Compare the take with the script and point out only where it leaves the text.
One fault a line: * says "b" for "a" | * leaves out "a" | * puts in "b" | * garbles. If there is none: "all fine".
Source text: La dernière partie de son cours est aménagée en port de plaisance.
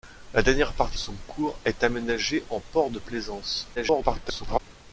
* leaves out "de"
* garbles